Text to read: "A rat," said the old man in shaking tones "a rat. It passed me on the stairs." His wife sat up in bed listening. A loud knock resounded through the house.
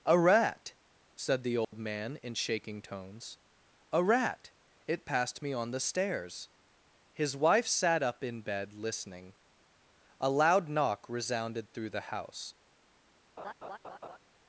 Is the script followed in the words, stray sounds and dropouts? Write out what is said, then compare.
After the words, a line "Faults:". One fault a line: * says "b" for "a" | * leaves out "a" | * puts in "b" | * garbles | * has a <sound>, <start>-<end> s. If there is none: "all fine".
"A rat," said the old man in shaking tones "a rat. It passed me on the stairs." His wife sat up in bed listening. A loud knock resounded through the house.
Faults:
* has a dropout, 1.6-1.7 s
* has a laugh, 13.4-14.2 s